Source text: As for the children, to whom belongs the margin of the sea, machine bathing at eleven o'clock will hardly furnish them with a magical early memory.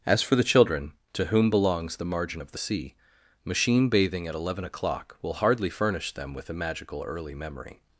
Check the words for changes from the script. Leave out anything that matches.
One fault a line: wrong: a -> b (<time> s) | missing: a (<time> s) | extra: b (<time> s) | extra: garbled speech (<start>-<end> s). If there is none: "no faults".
no faults